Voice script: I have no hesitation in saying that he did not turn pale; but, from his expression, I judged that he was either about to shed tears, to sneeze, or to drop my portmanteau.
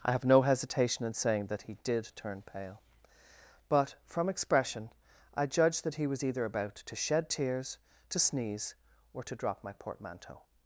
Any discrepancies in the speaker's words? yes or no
yes